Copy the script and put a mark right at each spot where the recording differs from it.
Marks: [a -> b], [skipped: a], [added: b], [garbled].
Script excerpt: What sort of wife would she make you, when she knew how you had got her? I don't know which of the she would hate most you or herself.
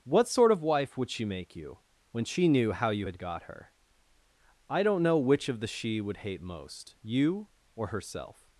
What sort of wife would she make you, when she knew how you had got her? I don't know which of the she would hate most you or herself.